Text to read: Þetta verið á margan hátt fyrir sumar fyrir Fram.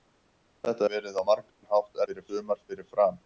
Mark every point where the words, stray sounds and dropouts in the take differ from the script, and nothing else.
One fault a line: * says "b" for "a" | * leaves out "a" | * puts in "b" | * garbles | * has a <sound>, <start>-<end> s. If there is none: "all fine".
* has a dropout, 1.5-1.6 s